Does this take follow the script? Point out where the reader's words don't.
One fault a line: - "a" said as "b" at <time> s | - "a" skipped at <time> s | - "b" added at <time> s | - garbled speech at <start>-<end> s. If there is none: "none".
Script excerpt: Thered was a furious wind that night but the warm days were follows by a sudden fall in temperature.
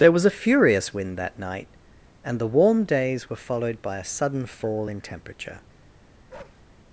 - "Thered" said as "There" at 0.0 s
- "but" said as "and" at 2.2 s
- "follows" said as "followed" at 3.4 s